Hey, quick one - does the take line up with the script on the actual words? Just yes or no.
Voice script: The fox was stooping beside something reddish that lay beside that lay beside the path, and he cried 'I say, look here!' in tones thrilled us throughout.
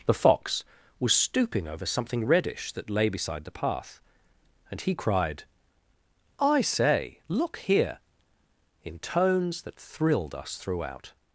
no